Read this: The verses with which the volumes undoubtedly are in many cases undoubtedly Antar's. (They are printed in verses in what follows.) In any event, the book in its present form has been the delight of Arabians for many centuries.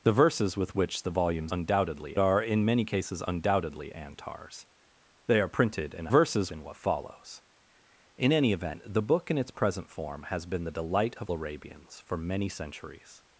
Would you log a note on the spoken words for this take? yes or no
no